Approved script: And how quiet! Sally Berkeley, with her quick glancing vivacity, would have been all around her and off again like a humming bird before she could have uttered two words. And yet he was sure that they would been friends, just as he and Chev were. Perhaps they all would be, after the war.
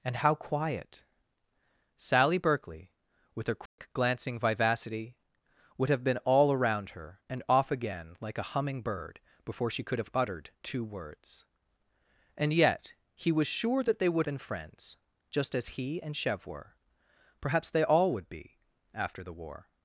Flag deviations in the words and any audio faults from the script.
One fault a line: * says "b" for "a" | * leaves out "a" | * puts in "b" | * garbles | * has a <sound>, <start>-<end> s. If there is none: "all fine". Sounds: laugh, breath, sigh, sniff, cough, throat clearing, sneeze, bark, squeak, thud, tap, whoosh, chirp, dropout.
* has a dropout, 3.7-3.8 s